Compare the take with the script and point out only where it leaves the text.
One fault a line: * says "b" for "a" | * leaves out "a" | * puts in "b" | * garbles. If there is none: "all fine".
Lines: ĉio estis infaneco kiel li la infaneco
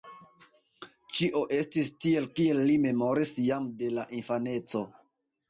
* says "tiel" for "infaneco"
* puts in "memoris jam de"